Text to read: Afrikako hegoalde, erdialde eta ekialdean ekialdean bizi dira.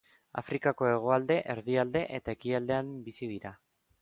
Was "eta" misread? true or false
false